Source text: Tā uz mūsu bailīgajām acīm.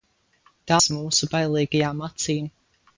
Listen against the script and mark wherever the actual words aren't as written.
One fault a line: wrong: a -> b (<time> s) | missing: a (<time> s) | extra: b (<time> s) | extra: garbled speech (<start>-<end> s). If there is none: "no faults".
no faults